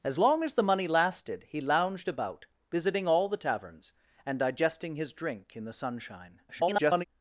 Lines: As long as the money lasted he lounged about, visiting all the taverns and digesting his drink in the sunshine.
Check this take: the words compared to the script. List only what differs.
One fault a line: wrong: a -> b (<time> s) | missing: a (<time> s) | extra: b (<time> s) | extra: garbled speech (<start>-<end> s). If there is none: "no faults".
extra: garbled speech (6.5-7.0 s)